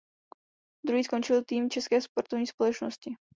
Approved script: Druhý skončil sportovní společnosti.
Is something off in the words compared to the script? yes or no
yes